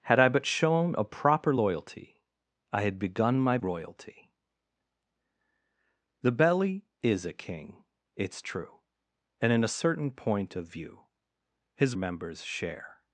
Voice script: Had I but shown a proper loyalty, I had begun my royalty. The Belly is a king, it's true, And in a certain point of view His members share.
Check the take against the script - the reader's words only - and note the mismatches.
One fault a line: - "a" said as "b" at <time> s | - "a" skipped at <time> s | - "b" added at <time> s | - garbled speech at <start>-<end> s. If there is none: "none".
none